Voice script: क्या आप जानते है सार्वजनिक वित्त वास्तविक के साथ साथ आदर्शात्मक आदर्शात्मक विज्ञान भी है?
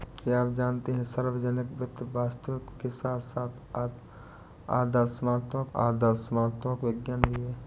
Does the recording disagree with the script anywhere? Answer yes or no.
no